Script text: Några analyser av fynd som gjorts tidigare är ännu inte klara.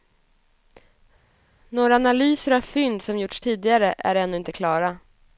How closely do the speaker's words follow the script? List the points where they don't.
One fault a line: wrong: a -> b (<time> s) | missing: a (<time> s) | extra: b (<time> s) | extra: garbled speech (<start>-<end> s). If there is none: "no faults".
no faults